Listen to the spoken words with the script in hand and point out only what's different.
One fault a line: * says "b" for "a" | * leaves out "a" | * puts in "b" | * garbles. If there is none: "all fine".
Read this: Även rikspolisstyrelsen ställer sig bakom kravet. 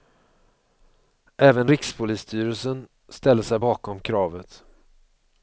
all fine